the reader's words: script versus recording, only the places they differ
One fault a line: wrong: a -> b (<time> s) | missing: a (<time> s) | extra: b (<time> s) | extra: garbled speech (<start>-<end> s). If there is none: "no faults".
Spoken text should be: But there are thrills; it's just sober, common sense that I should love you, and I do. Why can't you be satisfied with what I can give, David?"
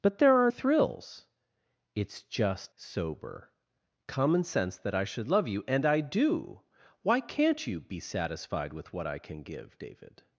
no faults